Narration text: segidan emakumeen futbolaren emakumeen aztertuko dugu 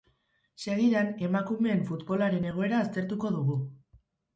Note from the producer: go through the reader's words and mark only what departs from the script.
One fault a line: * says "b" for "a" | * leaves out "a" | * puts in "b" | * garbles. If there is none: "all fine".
* says "egoera" for "emakumeen"